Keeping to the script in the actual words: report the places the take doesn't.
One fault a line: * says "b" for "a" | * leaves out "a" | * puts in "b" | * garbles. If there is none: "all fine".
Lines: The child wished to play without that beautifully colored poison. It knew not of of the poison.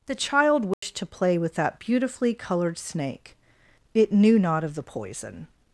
* says "with" for "without"
* says "snake" for "poison"
* leaves out "of"